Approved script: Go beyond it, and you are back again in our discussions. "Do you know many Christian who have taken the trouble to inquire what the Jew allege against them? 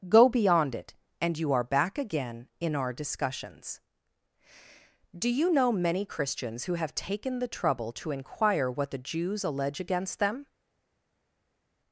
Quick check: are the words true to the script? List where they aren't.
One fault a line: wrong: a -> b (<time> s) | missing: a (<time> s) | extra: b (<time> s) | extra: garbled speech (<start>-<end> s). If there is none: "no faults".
wrong: Christian -> Christians (6.1 s)
wrong: Jew -> Jews (9.0 s)